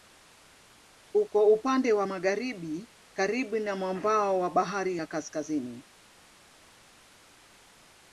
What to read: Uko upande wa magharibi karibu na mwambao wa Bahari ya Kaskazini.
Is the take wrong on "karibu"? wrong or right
right